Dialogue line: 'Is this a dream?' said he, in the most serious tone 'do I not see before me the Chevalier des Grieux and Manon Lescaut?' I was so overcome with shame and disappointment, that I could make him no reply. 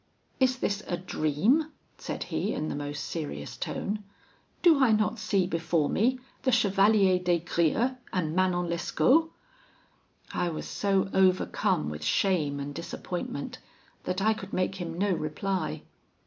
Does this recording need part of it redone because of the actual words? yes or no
no